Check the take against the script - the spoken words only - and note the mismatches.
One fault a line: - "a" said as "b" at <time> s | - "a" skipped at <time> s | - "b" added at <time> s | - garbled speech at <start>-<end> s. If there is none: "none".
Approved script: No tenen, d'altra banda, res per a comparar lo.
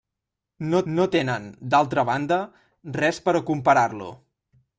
- "no" added at 0.9 s